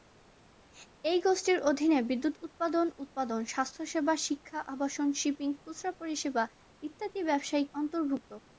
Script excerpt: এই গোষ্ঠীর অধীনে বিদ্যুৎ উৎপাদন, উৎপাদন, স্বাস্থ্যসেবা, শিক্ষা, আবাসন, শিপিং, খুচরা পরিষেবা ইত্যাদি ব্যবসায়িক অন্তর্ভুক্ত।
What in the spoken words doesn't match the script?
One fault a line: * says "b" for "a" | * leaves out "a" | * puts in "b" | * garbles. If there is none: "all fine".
all fine